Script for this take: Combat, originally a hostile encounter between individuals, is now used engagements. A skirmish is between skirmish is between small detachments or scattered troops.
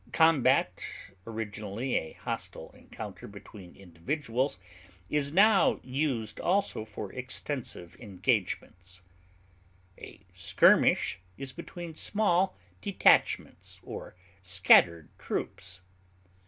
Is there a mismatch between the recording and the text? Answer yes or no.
yes